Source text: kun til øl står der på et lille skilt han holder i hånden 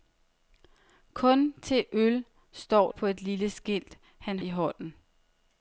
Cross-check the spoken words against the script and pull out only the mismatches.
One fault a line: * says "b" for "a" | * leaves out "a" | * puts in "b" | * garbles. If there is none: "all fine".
* leaves out "der"
* leaves out "holder"